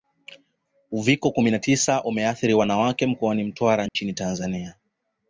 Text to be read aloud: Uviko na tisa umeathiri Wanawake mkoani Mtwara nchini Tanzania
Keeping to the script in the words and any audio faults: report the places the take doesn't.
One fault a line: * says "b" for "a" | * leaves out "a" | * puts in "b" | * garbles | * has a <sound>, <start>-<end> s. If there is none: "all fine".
* puts in "kumi"
* has a dropout, 3.9-3.9 s